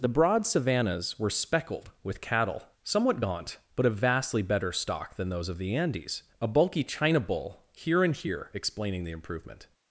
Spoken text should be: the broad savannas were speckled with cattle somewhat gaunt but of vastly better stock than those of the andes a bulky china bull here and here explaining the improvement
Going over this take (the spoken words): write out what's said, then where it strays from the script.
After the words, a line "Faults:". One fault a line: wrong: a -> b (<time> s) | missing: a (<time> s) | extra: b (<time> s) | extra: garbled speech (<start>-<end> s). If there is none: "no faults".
the broad savannas were speckled with cattle somewhat gaunt but of vastly better stock than those of the andes a bulky china bull here and here explaining the improvement
Faults:
no faults